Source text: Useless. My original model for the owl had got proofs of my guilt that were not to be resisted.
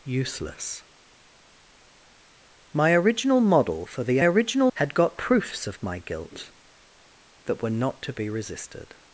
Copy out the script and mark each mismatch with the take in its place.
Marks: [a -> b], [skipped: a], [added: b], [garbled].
Useless. My original model for the [owl -> original] had got proofs of my guilt that were not to be resisted.